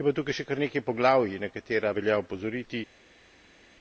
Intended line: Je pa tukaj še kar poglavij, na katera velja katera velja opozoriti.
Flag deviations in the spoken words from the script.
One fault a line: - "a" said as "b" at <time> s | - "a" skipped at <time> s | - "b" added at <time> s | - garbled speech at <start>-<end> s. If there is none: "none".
- "nekaj" added at 0.6 s
- "katera velja" skipped at 2.2 s